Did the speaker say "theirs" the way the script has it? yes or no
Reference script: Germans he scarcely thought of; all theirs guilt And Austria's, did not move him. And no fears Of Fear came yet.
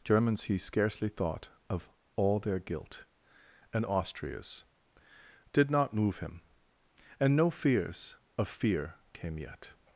no